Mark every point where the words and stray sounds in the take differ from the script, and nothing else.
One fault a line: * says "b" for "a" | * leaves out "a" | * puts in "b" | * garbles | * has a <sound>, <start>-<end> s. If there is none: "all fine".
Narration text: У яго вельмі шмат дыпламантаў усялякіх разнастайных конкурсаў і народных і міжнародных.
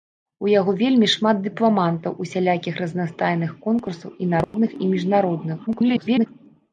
* has a dropout, 4.4-4.5 s
* garbles